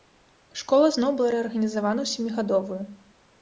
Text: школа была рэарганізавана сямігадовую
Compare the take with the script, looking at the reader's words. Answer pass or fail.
fail